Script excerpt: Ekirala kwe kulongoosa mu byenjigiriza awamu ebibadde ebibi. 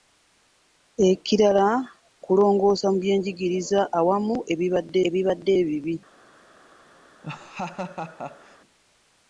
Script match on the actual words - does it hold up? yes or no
no